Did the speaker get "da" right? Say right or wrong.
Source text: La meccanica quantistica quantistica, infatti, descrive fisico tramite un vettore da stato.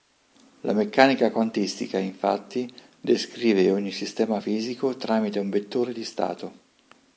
wrong